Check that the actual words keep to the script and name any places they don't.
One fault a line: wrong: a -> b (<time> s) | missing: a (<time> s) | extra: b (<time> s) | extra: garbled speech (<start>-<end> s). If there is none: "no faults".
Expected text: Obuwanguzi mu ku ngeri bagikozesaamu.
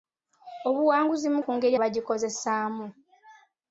no faults